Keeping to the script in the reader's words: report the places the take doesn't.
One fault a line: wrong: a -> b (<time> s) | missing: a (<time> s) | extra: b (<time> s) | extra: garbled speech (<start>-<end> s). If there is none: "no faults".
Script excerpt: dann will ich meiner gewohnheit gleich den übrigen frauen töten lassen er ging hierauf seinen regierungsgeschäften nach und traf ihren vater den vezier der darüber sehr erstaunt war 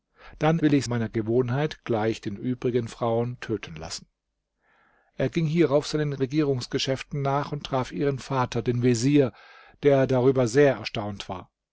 no faults